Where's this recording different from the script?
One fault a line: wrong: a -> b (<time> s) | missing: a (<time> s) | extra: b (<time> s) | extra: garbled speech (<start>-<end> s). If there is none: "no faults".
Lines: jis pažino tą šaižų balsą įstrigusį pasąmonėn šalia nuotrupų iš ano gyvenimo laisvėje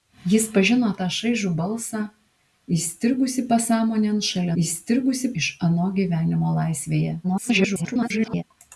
wrong: nuotrupų -> įstrigusį (4.6 s)
extra: garbled speech (7.2-8.4 s)